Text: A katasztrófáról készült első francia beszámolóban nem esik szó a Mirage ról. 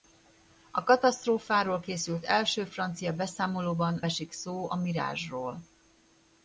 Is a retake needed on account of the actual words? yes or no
yes